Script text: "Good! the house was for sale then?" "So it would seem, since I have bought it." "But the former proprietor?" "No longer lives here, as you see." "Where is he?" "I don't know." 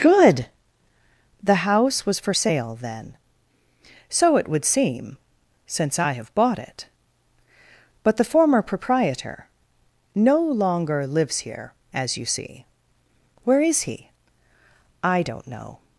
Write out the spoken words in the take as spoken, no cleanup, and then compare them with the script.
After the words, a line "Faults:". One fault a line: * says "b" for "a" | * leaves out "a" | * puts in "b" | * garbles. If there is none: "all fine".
"Good! the house was for sale then?" "So it would seem, since I have bought it." "But the former proprietor?" "No longer lives here, as you see." "Where is he?" "I don't know."
Faults:
all fine